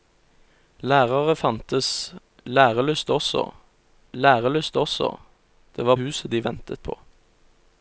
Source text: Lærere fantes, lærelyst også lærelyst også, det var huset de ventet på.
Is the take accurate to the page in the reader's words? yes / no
yes